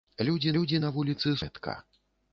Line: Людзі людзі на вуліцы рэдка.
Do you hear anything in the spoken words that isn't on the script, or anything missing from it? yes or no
no